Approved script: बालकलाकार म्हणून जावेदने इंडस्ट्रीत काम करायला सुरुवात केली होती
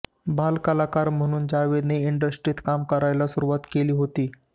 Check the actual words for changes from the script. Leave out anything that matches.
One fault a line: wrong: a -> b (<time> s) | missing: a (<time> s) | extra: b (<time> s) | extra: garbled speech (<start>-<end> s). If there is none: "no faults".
no faults